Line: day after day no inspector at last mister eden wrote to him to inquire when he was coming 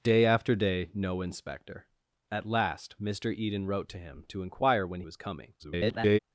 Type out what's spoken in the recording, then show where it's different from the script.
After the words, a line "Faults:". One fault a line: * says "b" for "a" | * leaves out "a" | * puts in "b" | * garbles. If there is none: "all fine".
day after day no inspector at last mister eden wrote to him to inquire when was coming [garbled]
Faults:
* leaves out "he"
* garbles